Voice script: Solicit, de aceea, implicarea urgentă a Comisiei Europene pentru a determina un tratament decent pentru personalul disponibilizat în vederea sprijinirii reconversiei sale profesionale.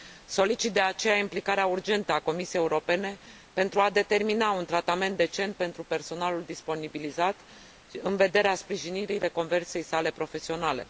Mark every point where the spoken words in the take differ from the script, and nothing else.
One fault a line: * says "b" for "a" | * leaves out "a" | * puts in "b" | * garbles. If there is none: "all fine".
all fine